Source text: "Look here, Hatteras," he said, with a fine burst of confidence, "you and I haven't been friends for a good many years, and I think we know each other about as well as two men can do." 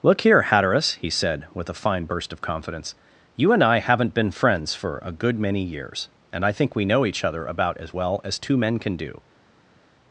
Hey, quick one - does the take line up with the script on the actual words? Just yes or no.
yes